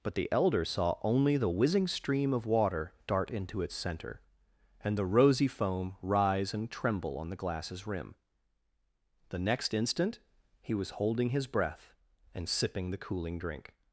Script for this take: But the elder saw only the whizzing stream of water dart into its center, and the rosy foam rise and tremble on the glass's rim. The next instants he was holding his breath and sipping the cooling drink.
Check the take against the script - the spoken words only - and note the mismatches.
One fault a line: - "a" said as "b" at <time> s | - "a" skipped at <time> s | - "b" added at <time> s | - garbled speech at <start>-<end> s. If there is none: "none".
- "instants" said as "instant" at 9.7 s